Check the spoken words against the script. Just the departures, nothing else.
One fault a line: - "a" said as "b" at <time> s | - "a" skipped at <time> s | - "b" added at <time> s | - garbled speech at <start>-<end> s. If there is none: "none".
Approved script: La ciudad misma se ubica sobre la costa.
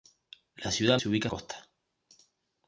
- "misma" skipped at 1.0 s
- "sobre la" skipped at 1.3 s